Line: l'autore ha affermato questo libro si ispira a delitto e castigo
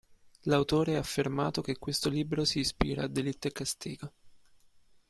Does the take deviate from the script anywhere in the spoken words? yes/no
yes